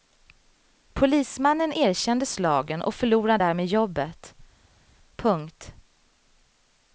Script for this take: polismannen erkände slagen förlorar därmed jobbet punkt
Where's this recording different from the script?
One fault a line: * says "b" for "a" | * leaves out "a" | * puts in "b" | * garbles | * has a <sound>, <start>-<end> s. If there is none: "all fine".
* puts in "och"